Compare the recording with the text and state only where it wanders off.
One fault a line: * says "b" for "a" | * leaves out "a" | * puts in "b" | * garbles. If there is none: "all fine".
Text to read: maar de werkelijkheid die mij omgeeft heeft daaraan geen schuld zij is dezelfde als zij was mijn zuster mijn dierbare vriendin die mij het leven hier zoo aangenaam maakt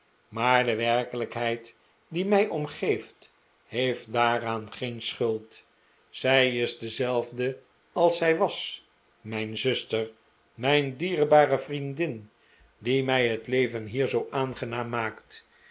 all fine